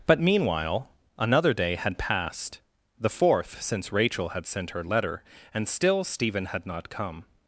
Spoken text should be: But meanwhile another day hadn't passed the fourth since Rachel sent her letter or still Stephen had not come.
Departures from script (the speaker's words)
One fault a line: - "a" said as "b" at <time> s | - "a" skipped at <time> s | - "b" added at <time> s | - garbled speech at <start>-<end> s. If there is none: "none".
- "hadn't" said as "had" at 1.8 s
- "had" added at 4.3 s
- "or" said as "and" at 5.5 s